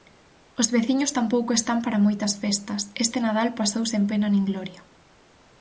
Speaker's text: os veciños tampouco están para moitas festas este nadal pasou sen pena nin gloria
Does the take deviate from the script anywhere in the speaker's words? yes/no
no